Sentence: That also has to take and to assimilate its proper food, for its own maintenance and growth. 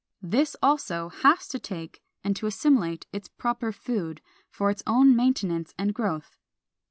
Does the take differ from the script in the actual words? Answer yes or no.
yes